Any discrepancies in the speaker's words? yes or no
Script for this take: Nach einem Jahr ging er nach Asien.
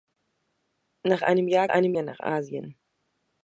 yes